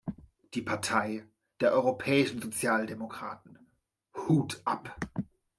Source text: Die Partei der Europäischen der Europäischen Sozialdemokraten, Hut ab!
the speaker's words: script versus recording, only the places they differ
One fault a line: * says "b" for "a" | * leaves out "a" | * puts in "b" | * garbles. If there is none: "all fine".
* leaves out "der Europäischen"